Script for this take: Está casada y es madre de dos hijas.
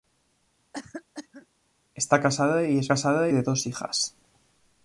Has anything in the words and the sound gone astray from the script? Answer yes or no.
yes